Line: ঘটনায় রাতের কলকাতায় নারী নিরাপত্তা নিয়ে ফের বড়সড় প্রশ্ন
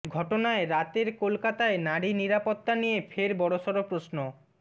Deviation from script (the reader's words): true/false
false